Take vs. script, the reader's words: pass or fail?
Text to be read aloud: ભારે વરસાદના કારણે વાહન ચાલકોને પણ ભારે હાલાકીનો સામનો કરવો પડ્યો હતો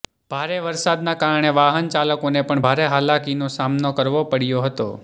pass